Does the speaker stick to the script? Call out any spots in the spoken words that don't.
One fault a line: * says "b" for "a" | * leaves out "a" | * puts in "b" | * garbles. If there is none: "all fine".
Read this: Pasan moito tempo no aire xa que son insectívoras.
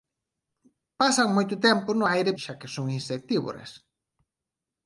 all fine